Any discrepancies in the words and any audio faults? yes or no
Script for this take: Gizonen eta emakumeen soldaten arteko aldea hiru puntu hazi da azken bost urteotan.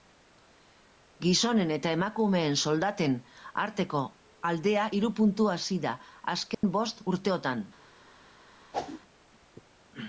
yes